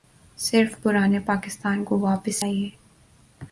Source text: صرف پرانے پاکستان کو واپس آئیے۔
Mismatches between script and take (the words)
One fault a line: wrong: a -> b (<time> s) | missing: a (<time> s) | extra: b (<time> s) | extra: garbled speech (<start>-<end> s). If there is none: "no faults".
no faults